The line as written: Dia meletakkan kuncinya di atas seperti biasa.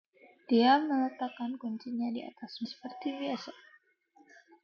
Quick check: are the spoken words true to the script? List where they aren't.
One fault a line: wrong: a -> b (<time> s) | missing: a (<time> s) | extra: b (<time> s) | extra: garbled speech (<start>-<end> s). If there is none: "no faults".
no faults